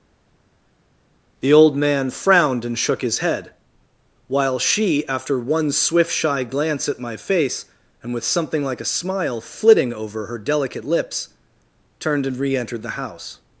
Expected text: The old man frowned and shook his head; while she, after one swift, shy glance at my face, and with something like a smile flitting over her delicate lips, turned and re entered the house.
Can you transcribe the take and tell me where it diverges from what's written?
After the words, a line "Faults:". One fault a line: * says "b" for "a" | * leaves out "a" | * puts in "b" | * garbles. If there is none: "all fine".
The old man frowned and shook his head; while she, after one swift, shy glance at my face, and with something like a smile flitting over her delicate lips, turned and re entered the house.
Faults:
all fine